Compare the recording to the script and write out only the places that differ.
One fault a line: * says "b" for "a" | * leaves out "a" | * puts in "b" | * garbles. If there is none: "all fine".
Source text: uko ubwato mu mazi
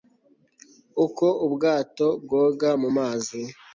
* puts in "bwoga"